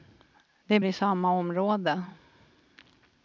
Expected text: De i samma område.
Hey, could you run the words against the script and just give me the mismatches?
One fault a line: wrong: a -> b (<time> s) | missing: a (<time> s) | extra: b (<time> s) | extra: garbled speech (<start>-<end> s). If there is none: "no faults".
no faults